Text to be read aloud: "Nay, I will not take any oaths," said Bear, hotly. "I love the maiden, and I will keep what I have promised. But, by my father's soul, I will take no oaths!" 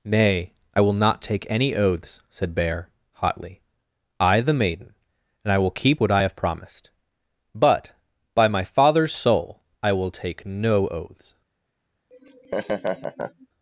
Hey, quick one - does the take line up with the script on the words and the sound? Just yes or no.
no